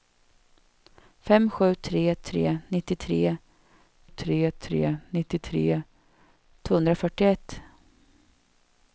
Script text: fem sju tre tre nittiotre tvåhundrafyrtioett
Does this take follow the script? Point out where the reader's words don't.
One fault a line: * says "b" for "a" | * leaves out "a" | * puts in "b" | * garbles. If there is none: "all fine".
* puts in "tre tre nittiotre"